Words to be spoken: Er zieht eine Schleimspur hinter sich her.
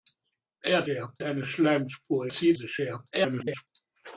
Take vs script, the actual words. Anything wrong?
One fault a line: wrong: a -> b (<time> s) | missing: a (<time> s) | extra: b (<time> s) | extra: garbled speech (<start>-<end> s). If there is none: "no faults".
wrong: zieht -> her (0.8 s)
wrong: hinter -> zieht (2.3 s)
extra: garbled speech (3.1-3.7 s)